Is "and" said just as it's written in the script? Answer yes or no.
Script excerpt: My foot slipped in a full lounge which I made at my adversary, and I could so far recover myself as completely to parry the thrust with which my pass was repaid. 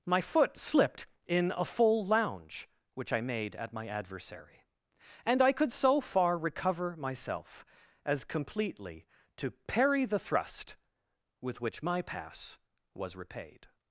yes